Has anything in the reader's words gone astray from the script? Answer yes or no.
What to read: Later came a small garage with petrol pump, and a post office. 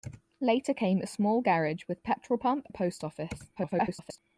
yes